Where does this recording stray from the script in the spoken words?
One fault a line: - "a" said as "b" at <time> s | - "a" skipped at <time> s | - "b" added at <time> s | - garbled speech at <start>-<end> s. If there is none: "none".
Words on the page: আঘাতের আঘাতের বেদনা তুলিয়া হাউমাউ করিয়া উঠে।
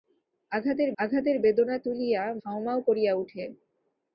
none